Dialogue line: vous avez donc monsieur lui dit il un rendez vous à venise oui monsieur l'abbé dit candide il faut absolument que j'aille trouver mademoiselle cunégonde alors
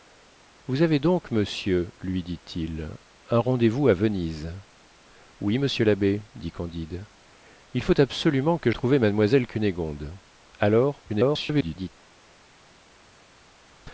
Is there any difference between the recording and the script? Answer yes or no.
yes